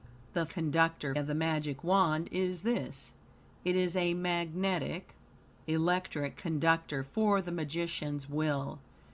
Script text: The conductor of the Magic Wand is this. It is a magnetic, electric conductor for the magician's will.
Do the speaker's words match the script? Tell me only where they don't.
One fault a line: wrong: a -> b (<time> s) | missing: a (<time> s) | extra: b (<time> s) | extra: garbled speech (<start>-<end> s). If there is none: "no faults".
no faults